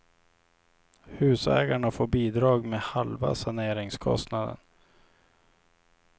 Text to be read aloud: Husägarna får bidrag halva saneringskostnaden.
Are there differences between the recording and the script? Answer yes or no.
yes